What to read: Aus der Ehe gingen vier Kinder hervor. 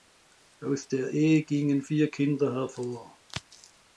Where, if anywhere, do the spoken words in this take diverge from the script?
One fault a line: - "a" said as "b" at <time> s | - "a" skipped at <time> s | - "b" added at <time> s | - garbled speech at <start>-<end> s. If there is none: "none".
none